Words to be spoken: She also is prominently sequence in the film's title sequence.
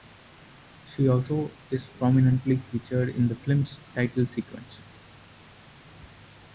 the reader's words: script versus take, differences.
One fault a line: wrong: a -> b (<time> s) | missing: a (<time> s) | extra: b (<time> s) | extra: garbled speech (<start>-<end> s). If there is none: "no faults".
wrong: sequence -> featured (2.6 s)